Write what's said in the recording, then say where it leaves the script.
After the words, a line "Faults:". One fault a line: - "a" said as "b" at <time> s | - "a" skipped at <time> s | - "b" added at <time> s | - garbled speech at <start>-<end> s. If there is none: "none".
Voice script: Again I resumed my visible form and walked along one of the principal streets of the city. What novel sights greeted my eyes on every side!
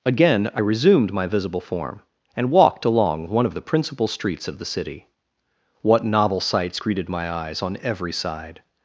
Again I resumed my visible form and walked along one of the principal streets of the city. What novel sights greeted my eyes on every side!
Faults:
none